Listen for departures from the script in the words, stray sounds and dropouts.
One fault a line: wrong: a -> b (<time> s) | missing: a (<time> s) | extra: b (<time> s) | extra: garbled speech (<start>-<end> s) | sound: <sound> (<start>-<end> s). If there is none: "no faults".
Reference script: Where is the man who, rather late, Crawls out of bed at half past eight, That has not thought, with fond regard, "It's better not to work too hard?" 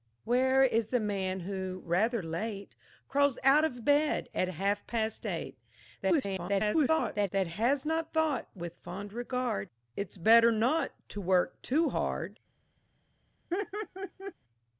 extra: garbled speech (6.0-7.3 s)
sound: laugh (13.5-14.3 s)